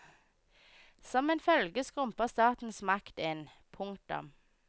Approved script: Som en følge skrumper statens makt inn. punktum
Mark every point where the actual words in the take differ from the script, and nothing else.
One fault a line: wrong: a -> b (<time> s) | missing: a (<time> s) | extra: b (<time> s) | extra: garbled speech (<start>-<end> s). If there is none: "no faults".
no faults